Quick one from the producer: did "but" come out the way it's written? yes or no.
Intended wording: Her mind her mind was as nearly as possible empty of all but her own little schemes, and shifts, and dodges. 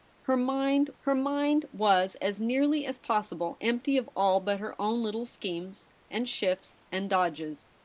yes